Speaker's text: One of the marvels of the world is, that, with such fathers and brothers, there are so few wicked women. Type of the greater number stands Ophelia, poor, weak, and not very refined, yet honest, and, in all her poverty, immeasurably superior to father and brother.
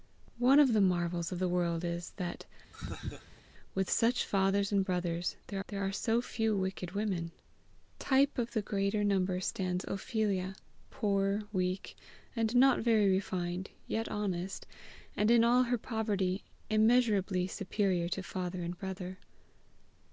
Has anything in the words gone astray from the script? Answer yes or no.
yes